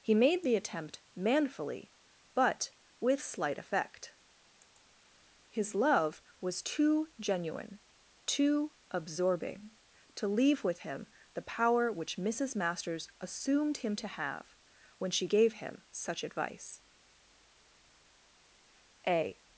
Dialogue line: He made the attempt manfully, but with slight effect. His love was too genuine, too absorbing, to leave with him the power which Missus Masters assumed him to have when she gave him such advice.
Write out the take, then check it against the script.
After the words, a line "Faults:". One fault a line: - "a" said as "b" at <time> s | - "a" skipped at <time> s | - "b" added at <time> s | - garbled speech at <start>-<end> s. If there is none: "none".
He made the attempt manfully, but with slight effect. His love was too genuine, too absorbing, to leave with him the power which Missus Masters assumed him to have when she gave him such advice. A
Faults:
- "A" added at 19.1 s